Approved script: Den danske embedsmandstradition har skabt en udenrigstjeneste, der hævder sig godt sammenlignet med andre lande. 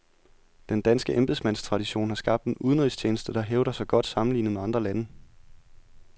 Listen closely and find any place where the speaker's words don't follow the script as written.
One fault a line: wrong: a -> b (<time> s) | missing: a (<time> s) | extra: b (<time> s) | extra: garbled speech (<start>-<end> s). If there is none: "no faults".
no faults